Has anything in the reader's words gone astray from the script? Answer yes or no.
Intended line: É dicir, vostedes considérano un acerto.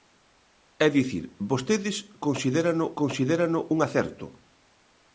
yes